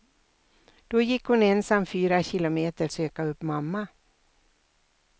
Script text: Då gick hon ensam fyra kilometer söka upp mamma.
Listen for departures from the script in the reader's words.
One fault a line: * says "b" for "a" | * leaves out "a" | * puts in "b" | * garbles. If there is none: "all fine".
all fine